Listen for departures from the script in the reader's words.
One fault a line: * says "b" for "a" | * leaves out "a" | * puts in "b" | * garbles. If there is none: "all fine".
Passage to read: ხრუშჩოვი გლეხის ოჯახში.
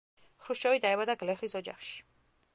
* puts in "დაიბადა"